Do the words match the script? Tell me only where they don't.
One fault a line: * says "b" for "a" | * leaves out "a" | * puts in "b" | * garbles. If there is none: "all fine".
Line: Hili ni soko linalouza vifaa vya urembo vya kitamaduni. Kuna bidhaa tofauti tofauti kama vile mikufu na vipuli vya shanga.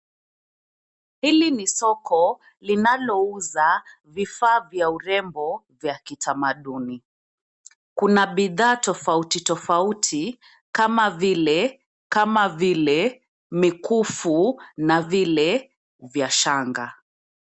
* puts in "kama vile"
* says "vile" for "vipuli"